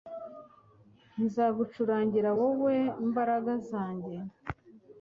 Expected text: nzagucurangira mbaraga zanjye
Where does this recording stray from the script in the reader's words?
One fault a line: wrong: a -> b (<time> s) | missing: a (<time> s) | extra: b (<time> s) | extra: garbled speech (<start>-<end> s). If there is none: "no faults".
extra: wowe (2.4 s)